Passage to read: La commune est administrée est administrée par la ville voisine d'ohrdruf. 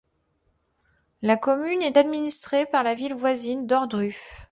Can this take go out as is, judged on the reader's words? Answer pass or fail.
fail